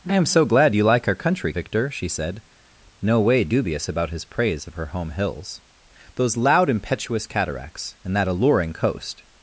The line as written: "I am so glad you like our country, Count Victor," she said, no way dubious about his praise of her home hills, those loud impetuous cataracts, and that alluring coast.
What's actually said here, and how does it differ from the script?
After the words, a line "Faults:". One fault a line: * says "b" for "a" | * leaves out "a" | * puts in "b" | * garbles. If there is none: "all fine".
"I am so glad you like our country, Victor," she said, no way dubious about his praise of her home hills, those loud impetuous cataracts, and that alluring coast.
Faults:
* leaves out "Count"